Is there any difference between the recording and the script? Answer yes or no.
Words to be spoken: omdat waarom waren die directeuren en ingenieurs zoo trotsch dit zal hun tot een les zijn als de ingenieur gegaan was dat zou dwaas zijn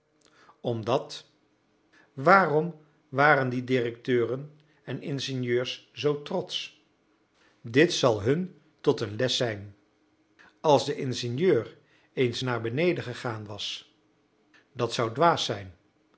yes